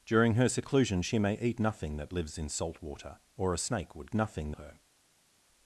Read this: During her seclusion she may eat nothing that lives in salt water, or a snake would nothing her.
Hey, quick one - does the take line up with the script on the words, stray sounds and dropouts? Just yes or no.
yes